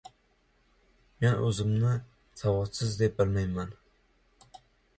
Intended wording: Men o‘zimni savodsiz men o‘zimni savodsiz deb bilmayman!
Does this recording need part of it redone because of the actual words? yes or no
yes